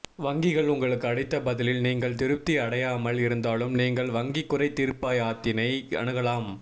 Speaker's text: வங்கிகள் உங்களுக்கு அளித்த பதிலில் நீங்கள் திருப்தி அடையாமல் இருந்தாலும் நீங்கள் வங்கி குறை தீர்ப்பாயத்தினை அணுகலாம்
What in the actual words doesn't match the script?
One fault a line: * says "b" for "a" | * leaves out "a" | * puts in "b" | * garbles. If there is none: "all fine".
all fine